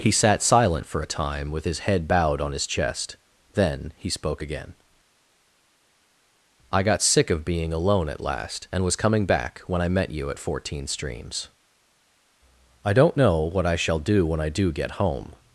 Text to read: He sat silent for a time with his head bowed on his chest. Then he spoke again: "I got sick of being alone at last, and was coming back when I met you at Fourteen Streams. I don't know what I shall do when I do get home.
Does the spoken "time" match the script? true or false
true